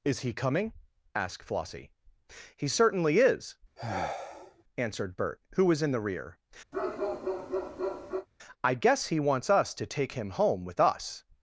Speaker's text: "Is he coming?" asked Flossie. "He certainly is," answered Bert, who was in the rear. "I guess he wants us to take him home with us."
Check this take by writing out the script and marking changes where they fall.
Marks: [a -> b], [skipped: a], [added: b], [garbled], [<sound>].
"Is he coming?" asked Flossie. "He certainly is," [sigh] answered Bert, who was in the rear. [bark] "I guess he wants us to take him home with us."